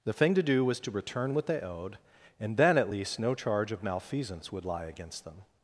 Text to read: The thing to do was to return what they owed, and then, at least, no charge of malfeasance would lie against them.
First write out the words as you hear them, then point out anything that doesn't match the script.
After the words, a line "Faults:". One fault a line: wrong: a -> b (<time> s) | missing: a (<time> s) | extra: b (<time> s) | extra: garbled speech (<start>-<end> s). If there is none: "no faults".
The thing to do was to return what they owed, and then, at least, no charge of malfeasance would lie against them.
Faults:
no faults